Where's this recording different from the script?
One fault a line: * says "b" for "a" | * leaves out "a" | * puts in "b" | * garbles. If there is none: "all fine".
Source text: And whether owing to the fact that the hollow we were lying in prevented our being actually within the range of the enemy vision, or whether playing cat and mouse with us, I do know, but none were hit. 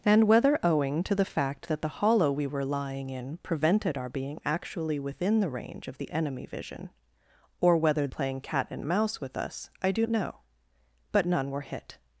all fine